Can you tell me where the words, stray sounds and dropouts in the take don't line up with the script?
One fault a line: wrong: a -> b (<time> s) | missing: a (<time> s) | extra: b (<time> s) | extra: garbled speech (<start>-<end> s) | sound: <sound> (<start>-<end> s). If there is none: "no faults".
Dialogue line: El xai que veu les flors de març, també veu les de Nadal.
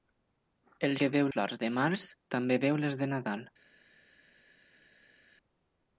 missing: xai (0.9 s)
missing: les (1.3 s)